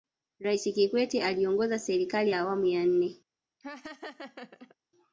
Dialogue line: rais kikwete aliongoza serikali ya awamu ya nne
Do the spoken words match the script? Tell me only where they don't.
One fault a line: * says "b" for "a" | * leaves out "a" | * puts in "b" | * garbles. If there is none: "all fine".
all fine